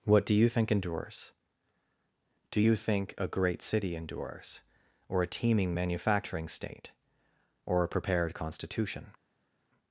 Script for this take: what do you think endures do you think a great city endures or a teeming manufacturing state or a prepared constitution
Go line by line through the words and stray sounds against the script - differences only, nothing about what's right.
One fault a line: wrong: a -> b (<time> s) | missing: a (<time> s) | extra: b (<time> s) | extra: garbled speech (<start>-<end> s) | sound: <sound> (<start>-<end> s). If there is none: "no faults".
no faults